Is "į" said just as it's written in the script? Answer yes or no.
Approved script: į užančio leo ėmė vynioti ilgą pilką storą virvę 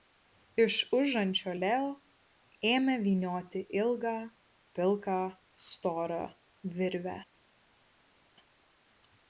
no